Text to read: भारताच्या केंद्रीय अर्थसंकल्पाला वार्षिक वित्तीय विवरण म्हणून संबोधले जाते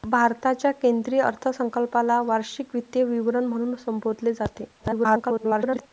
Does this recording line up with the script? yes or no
no